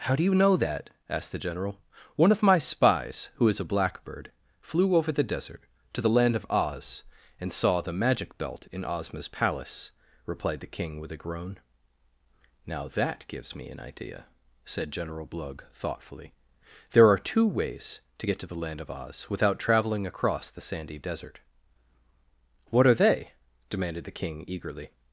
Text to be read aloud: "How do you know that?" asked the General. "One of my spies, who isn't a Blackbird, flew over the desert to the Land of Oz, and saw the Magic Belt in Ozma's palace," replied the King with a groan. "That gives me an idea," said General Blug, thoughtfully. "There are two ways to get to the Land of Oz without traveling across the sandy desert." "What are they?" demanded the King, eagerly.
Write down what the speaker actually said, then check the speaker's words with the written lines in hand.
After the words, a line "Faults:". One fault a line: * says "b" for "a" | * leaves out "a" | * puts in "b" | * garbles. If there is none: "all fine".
"How do you know that?" asked the General. "One of my spies, who is a Blackbird, flew over the desert to the Land of Oz, and saw the Magic Belt in Ozma's palace," replied the King with a groan. "Now that gives me an idea," said General Blug, thoughtfully. "There are two ways to get to the Land of Oz without traveling across the sandy desert." "What are they?" demanded the King, eagerly.
Faults:
* says "is" for "isn't"
* puts in "Now"